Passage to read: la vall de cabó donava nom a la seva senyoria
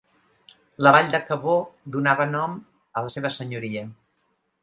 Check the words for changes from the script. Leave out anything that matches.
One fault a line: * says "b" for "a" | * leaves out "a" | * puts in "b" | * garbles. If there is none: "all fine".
all fine